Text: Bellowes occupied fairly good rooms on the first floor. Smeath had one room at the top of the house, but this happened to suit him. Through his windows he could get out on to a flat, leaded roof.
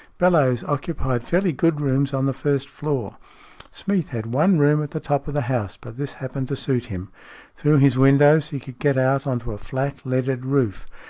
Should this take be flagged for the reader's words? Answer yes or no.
no